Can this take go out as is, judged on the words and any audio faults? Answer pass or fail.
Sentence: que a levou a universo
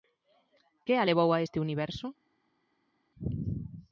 fail